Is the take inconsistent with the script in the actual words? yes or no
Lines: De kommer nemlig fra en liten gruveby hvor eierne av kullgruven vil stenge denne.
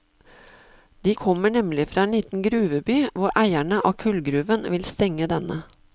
no